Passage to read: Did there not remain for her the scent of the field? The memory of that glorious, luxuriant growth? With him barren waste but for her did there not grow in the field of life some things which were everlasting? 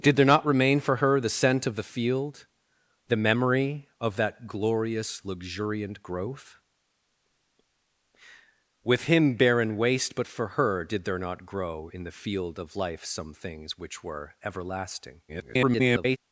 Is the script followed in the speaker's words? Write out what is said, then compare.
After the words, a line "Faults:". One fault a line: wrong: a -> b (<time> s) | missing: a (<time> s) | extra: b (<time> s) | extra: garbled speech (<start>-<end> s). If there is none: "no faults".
Did there not remain for her the scent of the field? The memory of that glorious, luxuriant growth? With him barren waste but for her did there not grow in the field of life some things which were everlasting? [garbled]
Faults:
extra: garbled speech (15.3-16.2 s)